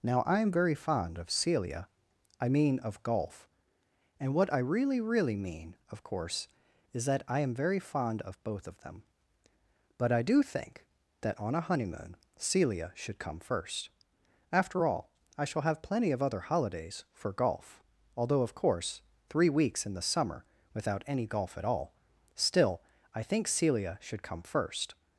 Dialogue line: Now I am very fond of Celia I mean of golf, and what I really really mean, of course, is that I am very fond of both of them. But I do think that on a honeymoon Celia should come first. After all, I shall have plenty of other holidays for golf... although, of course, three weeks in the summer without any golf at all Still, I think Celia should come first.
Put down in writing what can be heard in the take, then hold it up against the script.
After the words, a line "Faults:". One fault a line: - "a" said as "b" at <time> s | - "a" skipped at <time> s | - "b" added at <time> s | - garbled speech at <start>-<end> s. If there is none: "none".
Now I am very fond of Celia I mean of golf, and what I really really mean, of course, is that I am very fond of both of them. But I do think that on a honeymoon Celia should come first. After all, I shall have plenty of other holidays for golf... although, of course, three weeks in the summer without any golf at all Still, I think Celia should come first.
Faults:
none